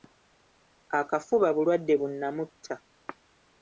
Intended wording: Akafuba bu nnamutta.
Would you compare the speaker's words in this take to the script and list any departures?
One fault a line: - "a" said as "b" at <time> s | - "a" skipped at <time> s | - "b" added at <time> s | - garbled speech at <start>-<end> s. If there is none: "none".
- "bulwadde" added at 1.6 s